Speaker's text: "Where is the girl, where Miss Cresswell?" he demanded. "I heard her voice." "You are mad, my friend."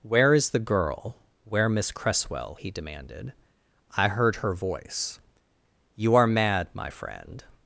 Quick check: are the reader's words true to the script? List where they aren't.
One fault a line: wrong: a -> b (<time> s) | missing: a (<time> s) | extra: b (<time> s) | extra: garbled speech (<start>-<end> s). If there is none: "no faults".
no faults